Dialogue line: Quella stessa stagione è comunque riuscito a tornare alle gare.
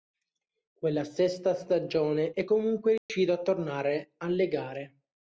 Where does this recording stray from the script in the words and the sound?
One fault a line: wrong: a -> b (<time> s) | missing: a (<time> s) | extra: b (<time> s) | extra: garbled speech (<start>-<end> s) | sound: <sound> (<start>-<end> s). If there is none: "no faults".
sound: dropout (3.0-3.1 s)